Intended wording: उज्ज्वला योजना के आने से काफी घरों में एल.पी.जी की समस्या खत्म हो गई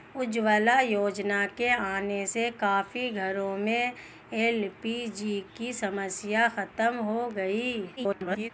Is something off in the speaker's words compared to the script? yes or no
yes